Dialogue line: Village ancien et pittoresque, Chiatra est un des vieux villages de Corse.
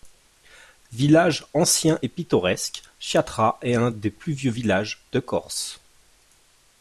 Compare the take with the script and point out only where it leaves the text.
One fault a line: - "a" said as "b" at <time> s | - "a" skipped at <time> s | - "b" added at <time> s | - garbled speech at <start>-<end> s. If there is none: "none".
- "plus" added at 4.1 s